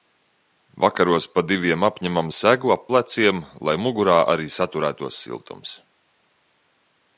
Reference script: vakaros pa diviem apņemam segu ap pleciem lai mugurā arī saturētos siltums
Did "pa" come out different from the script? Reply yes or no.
no